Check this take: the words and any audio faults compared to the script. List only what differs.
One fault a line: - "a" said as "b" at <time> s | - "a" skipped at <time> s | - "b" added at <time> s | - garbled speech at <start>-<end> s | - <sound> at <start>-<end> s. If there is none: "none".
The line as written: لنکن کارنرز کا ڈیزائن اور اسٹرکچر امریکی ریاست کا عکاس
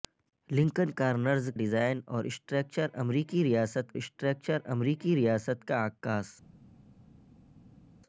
- "کا" skipped at 1.5 s
- "اسٹرکچر امریکی ریاست" added at 3.9 s